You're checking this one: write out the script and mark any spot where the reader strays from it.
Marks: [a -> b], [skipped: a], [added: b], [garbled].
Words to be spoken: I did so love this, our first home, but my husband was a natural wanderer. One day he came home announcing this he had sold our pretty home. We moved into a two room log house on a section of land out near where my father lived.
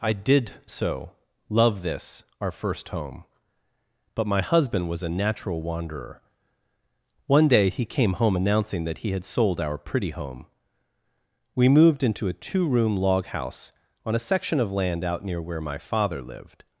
I did so love this, our first home, but my husband was a natural wanderer. One day he came home announcing [this -> that] he had sold our pretty home. We moved into a two room log house on a section of land out near where my father lived.